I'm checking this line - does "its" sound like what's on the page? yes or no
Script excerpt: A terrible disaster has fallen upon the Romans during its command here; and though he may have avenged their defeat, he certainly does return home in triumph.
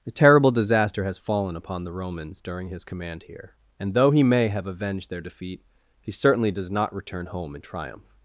no